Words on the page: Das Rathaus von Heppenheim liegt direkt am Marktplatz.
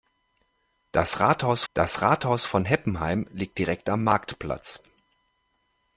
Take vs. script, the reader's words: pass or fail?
fail